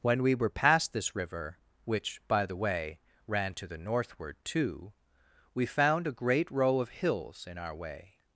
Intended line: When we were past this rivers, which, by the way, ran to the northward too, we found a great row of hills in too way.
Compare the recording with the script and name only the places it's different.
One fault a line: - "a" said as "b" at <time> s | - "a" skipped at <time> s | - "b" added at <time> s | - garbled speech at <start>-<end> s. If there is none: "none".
- "rivers" said as "river" at 1.1 s
- "too" said as "our" at 7.6 s